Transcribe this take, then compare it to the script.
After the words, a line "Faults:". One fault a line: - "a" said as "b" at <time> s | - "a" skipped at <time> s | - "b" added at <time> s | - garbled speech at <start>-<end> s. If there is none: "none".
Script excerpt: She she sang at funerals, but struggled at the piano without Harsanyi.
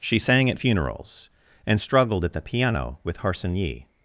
She sang at funerals, and struggled at the piano with Harsanyi.
Faults:
- "she" skipped at 0.2 s
- "but" said as "and" at 1.7 s
- "without" said as "with" at 3.1 s